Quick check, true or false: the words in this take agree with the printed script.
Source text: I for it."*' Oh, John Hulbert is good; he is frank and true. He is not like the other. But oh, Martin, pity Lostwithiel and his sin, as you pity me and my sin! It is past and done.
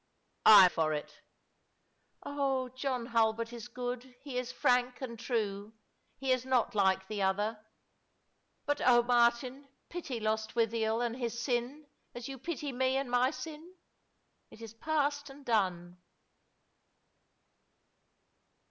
true